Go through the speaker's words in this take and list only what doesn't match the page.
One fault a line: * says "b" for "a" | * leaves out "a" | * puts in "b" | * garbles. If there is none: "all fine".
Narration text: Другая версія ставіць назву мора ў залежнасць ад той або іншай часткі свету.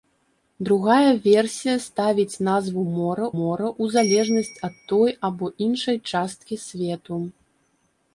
* puts in "мора"